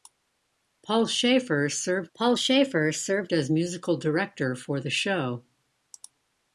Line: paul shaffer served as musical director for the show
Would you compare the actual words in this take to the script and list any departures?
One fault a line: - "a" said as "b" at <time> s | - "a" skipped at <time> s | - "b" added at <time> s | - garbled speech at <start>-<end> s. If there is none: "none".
- "paul shaffer served" added at 2.1 s